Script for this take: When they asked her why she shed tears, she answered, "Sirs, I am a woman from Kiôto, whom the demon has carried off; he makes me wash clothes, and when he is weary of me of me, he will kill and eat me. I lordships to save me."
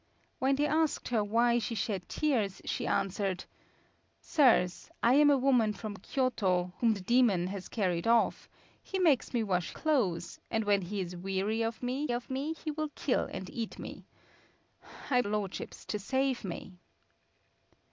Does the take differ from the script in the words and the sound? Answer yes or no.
no